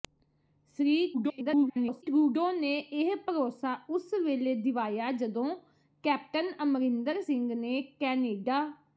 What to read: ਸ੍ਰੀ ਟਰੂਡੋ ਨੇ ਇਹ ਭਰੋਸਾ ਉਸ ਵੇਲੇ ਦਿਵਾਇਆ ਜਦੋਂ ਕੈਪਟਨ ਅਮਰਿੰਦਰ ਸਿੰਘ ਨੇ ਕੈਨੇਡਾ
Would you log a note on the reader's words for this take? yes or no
yes